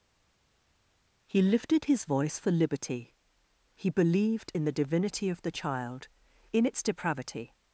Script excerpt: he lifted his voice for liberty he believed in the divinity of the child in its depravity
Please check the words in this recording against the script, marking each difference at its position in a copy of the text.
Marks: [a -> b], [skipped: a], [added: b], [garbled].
he lifted his voice for liberty he believed in the divinity of the child in its depravity